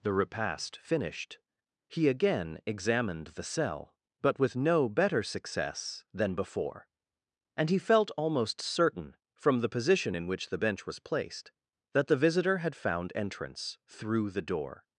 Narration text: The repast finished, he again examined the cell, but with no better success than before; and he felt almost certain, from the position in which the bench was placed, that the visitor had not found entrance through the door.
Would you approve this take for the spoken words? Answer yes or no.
no